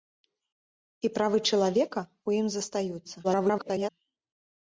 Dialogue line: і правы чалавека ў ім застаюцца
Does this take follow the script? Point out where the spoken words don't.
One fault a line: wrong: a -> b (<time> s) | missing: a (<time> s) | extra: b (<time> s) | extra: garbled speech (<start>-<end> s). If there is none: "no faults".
extra: garbled speech (3.2-3.9 s)